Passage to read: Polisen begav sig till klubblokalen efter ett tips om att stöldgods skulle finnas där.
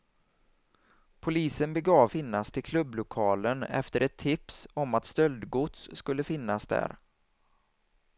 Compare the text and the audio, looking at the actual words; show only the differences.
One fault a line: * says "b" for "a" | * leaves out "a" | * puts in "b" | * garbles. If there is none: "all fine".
* says "finnas" for "sig"